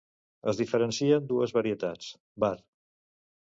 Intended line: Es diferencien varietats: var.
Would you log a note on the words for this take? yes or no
yes